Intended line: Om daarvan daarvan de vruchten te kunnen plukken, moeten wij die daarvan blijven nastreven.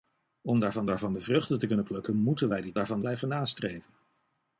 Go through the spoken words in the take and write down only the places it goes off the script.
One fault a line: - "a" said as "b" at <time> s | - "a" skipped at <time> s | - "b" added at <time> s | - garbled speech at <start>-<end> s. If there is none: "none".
none